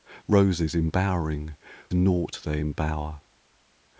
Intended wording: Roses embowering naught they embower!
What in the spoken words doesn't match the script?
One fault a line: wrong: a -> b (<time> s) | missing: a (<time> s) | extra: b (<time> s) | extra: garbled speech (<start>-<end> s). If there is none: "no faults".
no faults